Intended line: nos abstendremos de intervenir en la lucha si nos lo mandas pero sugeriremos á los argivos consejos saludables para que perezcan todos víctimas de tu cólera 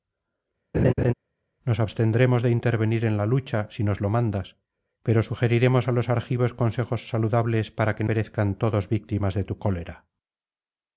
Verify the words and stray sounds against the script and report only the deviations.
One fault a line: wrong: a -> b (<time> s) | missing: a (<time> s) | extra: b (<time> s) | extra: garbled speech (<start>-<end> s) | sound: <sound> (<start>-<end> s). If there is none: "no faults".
sound: laugh (0.7-1.1 s)